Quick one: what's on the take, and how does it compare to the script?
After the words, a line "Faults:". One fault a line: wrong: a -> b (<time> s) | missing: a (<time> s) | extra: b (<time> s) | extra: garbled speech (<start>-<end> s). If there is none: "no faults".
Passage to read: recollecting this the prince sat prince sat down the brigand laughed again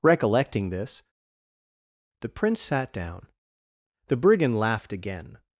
recollecting this the prince sat down the brigand laughed again
Faults:
missing: prince sat (2.9 s)